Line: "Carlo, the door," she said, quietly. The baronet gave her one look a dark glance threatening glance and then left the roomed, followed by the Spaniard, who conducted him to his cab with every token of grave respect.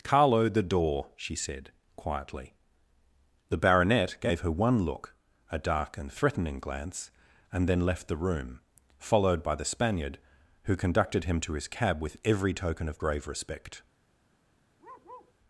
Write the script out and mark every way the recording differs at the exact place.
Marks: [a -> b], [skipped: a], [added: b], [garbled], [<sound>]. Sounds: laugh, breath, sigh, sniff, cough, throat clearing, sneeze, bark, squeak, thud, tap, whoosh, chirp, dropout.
"Carlo, the door," she said, quietly. The baronet gave her one look a dark [glance -> and] threatening glance and then left the [roomed, -> room] followed by the Spaniard, who conducted him to his cab with every token of grave respect. [bark]